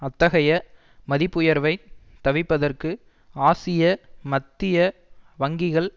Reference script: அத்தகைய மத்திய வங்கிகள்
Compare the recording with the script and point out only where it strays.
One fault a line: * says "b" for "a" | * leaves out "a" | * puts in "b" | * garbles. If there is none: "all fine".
* puts in "மதிப்புயர்வைத் தவிர்ப்பதற்கு ஆசிய"